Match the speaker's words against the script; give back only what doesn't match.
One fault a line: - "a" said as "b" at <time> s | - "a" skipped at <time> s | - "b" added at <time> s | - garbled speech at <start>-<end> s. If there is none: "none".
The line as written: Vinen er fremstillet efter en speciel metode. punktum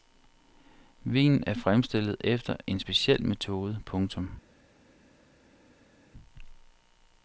none